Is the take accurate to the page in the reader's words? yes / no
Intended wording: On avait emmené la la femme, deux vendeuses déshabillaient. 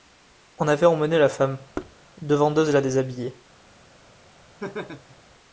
no